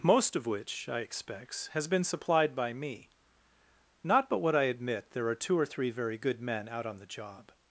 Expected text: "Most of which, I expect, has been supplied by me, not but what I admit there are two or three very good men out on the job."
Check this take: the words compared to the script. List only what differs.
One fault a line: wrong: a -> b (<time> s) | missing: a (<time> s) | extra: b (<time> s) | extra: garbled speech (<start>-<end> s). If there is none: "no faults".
wrong: expect -> expects (1.0 s)